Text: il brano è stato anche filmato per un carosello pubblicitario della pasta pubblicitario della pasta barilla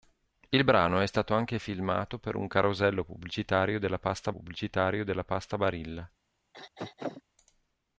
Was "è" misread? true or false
false